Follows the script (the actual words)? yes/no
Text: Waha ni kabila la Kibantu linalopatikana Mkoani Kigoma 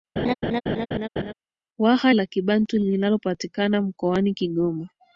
no